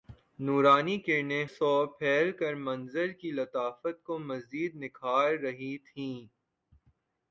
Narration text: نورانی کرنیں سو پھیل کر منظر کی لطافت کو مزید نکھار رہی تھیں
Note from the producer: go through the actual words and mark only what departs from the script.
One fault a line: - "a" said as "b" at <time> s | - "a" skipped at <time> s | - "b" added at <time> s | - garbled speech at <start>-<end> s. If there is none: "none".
none